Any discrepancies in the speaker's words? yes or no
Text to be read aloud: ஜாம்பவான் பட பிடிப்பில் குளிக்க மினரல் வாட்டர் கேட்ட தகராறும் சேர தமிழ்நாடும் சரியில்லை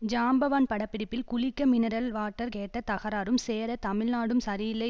no